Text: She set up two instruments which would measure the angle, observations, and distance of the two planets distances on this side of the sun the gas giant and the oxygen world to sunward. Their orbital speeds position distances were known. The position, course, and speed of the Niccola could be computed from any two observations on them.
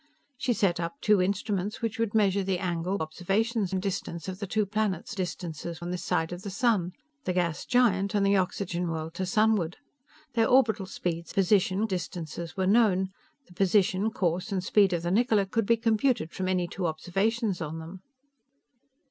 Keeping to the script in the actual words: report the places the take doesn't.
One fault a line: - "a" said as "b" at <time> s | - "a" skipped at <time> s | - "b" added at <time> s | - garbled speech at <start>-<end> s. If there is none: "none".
none